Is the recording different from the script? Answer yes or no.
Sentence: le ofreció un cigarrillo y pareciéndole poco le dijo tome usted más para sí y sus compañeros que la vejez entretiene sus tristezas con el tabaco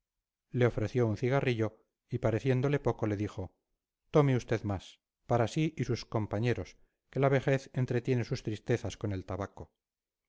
no